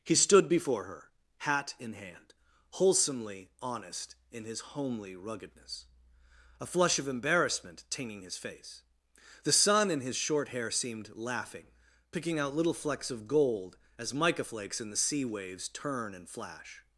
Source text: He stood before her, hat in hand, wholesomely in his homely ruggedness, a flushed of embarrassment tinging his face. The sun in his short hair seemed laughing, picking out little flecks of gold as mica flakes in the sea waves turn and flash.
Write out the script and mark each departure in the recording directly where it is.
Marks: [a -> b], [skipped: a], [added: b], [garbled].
He stood before her, hat in hand, wholesomely [added: honest] in his homely ruggedness, a [flushed -> flush] of embarrassment tinging his face. The sun in his short hair seemed laughing, picking out little flecks of gold as mica flakes in the sea waves turn and flash.